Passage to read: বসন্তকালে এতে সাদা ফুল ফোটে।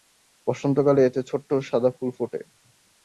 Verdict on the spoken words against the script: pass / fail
fail